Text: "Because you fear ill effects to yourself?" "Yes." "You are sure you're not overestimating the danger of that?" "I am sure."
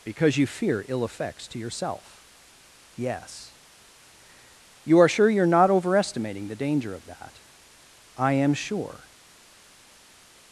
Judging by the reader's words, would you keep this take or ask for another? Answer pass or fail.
pass